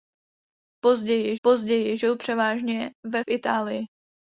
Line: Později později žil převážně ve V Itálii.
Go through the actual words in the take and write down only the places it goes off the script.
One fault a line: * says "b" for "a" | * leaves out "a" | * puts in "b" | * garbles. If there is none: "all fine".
all fine